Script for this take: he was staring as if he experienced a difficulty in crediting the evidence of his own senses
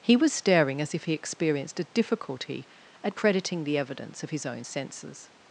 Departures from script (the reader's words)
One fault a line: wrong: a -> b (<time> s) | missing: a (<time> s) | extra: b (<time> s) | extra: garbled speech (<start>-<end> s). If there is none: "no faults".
wrong: in -> at (3.0 s)